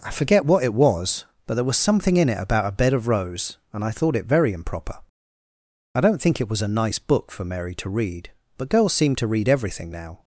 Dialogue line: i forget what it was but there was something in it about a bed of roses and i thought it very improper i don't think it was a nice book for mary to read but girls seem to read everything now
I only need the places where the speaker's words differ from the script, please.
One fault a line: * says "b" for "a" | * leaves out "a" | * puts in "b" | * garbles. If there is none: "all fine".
* says "rose" for "roses"